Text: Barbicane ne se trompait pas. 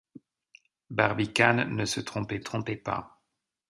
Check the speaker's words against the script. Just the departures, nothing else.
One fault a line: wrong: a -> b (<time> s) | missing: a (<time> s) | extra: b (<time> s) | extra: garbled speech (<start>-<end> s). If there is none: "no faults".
extra: trompait (2.4 s)